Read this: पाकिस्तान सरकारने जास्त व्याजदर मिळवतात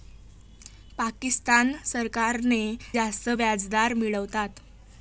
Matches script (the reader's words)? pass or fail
pass